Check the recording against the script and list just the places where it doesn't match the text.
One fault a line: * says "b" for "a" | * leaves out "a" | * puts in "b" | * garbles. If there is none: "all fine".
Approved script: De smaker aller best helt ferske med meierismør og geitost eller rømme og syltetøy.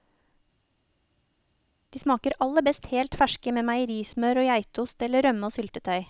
all fine